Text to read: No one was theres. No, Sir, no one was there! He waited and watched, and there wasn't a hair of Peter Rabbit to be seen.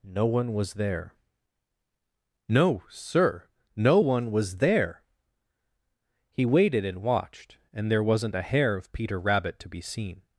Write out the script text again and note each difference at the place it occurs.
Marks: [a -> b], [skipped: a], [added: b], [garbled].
No one was [theres. -> there] No, Sir, no one was there! He waited and watched, and there wasn't a hair of Peter Rabbit to be seen.